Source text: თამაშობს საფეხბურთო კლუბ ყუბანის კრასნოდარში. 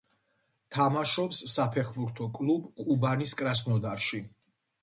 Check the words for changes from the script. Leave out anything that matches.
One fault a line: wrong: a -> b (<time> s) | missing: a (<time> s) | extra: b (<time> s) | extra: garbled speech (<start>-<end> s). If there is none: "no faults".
no faults